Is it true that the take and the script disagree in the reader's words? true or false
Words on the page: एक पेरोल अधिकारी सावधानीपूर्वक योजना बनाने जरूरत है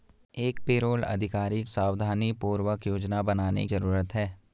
false